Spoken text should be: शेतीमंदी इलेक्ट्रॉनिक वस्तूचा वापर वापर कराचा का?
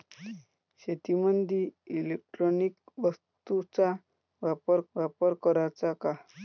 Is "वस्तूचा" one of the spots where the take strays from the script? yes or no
no